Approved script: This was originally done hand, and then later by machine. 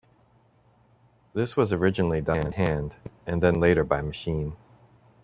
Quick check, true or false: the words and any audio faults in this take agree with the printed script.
true